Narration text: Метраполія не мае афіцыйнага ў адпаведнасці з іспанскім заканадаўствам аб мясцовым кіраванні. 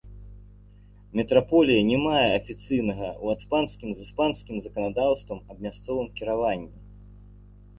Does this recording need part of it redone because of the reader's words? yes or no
yes